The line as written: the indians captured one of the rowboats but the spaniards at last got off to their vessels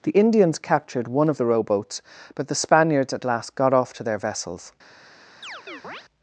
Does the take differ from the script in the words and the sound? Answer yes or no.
yes